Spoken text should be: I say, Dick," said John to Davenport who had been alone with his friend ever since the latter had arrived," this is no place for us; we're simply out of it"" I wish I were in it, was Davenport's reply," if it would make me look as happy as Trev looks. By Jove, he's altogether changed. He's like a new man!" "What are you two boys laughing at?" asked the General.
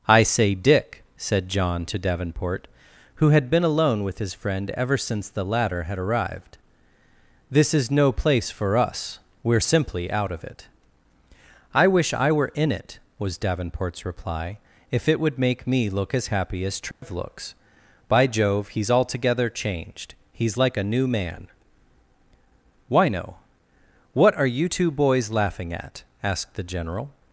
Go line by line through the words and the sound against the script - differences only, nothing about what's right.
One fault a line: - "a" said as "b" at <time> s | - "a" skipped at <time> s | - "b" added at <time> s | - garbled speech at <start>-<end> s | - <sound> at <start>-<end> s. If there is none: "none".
- dropout at 16.9-17.0 s
- "why no" added at 22.9 s